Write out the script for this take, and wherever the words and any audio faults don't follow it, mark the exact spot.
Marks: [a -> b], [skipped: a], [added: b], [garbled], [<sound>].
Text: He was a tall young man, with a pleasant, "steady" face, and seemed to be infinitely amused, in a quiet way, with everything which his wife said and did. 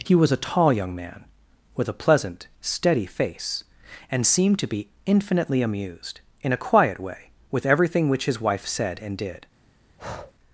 He was a tall young man, with a pleasant, "steady" face, and seemed to be infinitely amused, in a quiet way, with everything which his wife said and did. [breath]